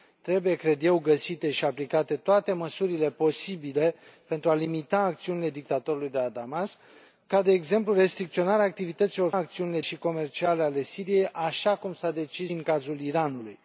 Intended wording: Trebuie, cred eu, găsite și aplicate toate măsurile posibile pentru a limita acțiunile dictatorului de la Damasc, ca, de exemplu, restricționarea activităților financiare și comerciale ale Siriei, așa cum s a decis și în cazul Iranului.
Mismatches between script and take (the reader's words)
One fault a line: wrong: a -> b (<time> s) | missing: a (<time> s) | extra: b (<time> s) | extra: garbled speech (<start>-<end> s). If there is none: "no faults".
wrong: financiare -> acțiunile (9.3 s)
missing: și (12.5 s)